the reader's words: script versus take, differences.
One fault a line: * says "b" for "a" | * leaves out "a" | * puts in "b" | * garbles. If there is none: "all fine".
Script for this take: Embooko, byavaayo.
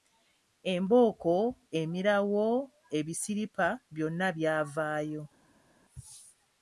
* puts in "emirawo ebisiripa byonna"